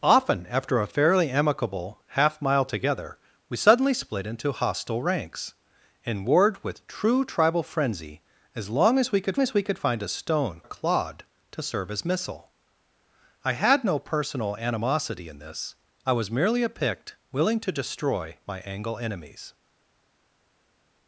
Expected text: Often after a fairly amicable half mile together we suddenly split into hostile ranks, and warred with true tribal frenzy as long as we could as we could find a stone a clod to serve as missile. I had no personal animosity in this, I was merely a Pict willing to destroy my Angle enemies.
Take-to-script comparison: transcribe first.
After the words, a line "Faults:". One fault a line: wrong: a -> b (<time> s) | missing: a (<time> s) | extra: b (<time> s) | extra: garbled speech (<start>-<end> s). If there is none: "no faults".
Often after a fairly amicable half mile together we suddenly split into hostile ranks, and warred with true tribal frenzy as long as we could as we could find a stone a clod to serve as missile. I had no personal animosity in this, I was merely a Pict willing to destroy my Angle enemies.
Faults:
no faults